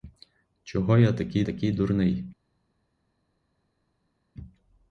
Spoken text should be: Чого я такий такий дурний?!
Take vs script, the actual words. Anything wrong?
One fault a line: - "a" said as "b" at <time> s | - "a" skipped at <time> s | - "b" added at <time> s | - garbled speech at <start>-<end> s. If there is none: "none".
none